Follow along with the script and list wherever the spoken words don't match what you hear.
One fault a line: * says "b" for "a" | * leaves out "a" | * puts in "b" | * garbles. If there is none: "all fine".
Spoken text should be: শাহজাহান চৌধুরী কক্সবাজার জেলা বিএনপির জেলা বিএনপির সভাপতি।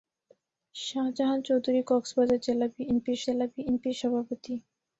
all fine